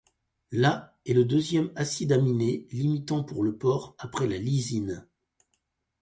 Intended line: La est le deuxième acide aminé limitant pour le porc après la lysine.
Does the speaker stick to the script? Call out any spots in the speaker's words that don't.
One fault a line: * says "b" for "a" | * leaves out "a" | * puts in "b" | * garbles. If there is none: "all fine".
all fine